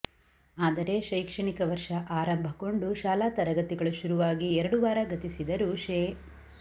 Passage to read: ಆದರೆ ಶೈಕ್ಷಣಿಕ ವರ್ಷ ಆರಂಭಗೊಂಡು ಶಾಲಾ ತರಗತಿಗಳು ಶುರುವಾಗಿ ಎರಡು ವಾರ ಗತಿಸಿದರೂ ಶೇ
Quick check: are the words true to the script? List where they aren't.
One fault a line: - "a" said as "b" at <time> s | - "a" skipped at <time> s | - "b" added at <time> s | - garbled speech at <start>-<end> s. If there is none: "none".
none